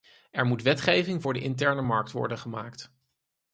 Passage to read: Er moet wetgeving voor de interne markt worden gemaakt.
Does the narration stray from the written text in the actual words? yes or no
no